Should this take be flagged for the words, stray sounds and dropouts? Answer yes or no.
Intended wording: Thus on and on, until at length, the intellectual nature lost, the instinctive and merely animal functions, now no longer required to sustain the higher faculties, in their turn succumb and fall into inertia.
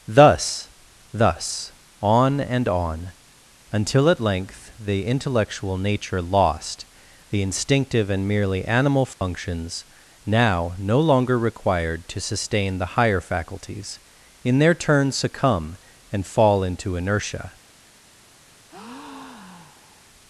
yes